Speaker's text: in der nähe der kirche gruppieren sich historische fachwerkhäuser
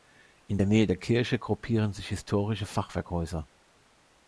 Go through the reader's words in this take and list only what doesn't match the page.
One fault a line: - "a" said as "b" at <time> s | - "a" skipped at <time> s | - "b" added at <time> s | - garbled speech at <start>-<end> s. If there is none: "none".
none